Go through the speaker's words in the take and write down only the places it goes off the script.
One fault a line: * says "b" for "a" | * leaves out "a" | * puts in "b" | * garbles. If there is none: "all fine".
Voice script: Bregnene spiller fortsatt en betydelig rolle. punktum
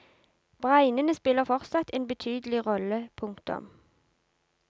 all fine